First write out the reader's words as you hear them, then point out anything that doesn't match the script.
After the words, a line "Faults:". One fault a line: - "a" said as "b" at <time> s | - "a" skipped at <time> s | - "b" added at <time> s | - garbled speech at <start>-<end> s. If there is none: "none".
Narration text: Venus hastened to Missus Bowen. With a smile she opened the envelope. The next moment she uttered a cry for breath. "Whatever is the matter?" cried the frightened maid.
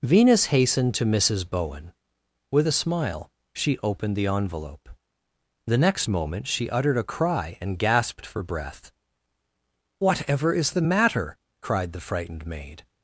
Venus hastened to Missus Bowen. With a smile she opened the envelope. The next moment she uttered a cry and gasped for breath. "Whatever is the matter?" cried the frightened maid.
Faults:
- "and gasped" added at 7.6 s